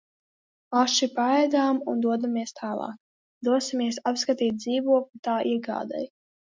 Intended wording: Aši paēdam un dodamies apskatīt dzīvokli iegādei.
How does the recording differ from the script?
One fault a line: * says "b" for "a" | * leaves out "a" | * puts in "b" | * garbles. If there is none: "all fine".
* puts in "tālāk dosimies"
* puts in "tā"